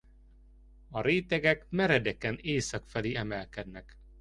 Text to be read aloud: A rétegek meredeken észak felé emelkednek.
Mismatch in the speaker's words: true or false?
false